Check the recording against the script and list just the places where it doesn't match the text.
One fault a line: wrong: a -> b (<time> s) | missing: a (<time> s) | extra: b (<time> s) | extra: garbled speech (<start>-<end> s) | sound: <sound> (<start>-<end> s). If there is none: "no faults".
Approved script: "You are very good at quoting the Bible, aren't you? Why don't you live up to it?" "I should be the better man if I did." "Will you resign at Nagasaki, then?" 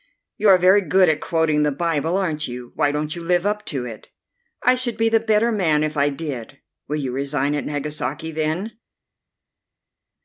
no faults